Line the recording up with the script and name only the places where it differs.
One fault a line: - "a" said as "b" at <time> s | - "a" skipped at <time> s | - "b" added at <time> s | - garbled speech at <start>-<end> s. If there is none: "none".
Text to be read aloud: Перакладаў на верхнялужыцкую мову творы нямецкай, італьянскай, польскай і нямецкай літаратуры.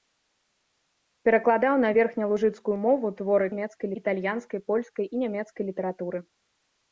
none